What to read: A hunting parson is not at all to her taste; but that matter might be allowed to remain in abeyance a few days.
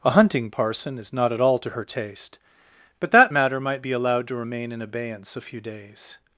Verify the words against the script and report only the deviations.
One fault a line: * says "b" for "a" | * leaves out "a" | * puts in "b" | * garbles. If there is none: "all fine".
all fine